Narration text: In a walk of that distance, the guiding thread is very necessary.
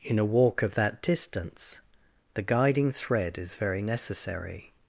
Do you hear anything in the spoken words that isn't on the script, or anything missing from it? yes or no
no